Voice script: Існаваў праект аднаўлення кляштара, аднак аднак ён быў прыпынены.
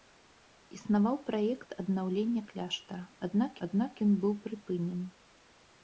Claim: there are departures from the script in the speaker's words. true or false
false